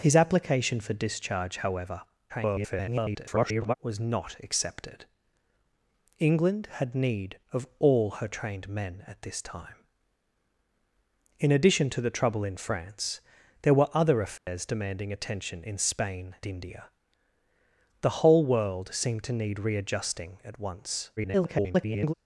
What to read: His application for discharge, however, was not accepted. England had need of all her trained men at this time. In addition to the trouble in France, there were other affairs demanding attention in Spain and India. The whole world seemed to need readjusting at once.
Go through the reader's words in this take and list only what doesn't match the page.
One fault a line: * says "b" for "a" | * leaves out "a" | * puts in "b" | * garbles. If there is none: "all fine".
* garbles
* leaves out "and"
* garbles